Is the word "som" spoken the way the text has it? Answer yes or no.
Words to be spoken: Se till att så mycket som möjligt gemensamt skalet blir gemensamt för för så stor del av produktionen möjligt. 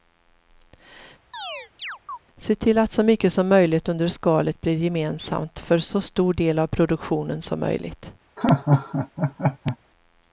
yes